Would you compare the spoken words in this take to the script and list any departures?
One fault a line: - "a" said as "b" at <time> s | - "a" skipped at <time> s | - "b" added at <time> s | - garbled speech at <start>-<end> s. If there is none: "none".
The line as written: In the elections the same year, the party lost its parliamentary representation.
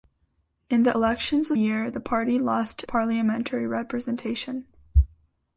- "same" skipped at 1.6 s
- "its" skipped at 2.8 s